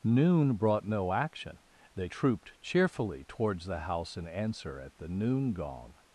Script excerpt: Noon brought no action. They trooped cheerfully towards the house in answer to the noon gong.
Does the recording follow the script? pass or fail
fail